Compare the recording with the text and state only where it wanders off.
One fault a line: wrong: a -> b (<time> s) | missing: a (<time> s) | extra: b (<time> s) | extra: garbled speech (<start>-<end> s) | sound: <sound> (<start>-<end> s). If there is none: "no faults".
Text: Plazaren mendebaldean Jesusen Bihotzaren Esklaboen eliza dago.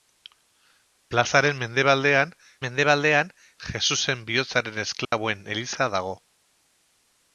extra: mendebaldean (2.6 s)
sound: dropout (5.0-5.1 s)